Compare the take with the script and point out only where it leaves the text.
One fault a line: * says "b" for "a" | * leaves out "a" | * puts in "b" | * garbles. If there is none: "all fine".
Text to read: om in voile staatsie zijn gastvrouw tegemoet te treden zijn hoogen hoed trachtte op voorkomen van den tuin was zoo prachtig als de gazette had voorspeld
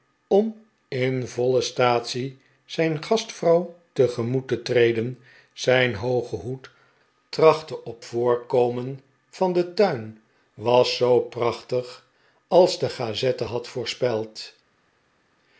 all fine